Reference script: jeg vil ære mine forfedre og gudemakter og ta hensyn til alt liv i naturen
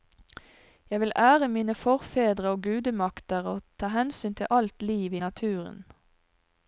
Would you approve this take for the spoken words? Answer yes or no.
yes